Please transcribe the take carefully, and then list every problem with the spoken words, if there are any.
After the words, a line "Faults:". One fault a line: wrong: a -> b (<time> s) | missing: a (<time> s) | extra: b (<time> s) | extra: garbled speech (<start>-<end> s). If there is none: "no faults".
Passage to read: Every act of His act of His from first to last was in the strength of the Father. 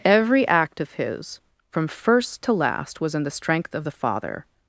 Every act of His from first to last was in the strength of the Father.
Faults:
missing: act of His (1.4 s)